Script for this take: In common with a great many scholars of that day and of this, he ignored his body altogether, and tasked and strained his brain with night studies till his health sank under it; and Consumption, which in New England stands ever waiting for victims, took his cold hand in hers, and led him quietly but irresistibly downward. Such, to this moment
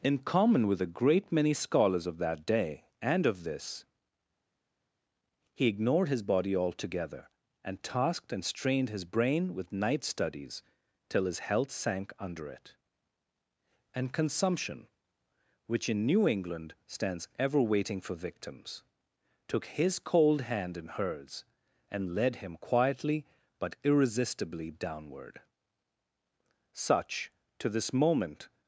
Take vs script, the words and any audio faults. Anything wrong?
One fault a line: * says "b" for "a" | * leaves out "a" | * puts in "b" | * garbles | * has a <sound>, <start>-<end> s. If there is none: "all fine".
all fine